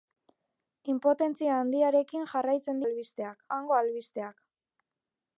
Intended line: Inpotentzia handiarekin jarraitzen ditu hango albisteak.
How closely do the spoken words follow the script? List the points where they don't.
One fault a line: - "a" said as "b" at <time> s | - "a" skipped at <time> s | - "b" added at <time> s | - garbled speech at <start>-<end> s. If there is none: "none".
- "ditu" said as "albisteak" at 2.8 s